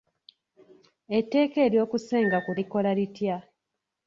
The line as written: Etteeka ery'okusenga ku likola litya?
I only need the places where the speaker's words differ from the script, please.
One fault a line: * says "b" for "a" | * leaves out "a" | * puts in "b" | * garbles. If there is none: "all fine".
all fine